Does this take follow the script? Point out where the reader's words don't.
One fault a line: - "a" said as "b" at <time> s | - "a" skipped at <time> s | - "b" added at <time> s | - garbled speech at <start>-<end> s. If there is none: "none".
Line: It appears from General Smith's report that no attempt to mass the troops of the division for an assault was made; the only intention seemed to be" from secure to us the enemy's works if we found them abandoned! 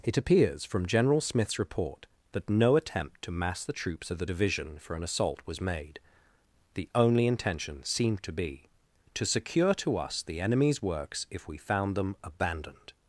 - "from" said as "to" at 9.1 s